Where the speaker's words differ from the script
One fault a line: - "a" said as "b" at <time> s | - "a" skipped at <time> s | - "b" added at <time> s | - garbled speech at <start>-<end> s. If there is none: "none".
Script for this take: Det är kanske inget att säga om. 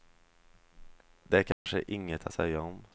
none